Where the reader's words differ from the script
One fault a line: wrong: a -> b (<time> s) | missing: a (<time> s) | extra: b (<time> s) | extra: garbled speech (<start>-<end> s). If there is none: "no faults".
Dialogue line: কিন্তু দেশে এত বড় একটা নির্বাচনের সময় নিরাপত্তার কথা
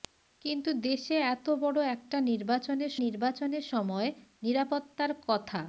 extra: নির্বাচনের (3.0 s)